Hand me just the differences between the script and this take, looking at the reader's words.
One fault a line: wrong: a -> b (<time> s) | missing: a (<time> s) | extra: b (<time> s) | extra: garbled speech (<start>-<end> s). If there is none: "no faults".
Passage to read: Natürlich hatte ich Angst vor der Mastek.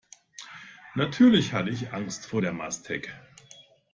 no faults